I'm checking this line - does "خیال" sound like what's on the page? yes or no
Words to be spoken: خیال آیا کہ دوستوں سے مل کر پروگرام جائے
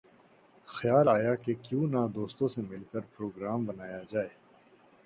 yes